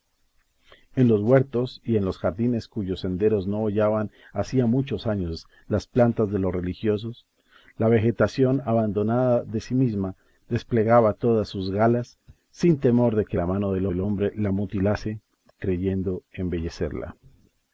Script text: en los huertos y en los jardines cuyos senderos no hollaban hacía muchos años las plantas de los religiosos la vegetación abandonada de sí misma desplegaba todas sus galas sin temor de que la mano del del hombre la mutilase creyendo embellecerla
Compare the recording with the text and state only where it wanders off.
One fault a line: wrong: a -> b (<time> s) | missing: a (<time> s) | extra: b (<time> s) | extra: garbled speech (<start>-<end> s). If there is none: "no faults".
no faults